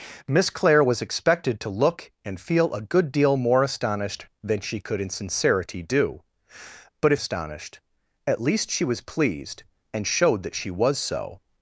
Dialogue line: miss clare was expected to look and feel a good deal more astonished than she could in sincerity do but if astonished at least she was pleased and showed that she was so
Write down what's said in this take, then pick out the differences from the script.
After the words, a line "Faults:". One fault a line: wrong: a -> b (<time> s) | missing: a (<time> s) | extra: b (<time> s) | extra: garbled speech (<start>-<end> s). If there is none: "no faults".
miss clare was expected to look and feel a good deal more astonished than she could in sincerity do but if astonished at least she was pleased and showed that she was so
Faults:
no faults